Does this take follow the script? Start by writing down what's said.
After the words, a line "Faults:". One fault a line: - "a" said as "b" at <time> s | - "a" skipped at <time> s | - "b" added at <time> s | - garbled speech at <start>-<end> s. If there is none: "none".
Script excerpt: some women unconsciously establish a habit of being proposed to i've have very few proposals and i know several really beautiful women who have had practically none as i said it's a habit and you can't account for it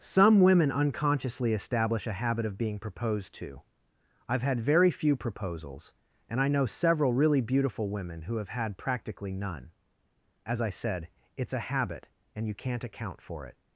some women unconsciously establish a habit of being proposed to i've had very few proposals and i know several really beautiful women who have had practically none as i said it's a habit and you can't account for it
Faults:
- "have" said as "had" at 4.4 s